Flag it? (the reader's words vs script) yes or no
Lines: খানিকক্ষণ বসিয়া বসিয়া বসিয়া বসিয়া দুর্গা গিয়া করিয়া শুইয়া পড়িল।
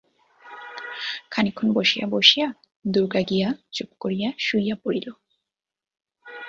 yes